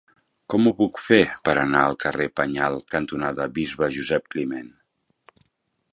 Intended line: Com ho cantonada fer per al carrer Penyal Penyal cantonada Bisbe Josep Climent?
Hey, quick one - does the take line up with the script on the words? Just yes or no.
no